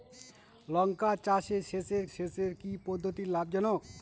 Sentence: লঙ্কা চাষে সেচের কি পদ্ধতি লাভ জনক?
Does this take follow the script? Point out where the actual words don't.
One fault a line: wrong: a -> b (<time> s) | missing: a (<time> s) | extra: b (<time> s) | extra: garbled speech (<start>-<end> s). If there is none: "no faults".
extra: সেচের (2.1 s)